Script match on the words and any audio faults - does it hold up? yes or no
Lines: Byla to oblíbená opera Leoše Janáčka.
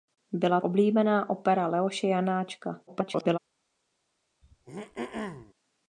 no